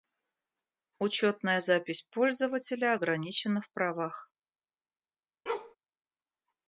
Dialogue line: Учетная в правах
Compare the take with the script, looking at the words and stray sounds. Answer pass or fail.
fail